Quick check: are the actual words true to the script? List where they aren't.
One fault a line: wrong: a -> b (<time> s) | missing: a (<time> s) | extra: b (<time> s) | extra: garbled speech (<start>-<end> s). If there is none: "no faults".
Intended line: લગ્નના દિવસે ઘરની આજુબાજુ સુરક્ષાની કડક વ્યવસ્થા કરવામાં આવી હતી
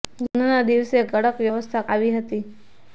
missing: ઘરની આજુબાજુ સુરક્ષાની (1.0 s)
missing: કરવામાં (1.9 s)